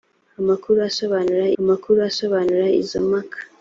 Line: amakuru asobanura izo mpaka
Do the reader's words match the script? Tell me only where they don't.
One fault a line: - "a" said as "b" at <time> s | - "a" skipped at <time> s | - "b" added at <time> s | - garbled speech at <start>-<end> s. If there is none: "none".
- "amakuru asobanura" added at 1.6 s